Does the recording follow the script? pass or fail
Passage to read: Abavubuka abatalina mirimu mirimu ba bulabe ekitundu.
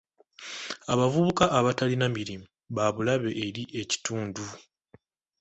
fail